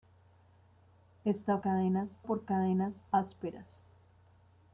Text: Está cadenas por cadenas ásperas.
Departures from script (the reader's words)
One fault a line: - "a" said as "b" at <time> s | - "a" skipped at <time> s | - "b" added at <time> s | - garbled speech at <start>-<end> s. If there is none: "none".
none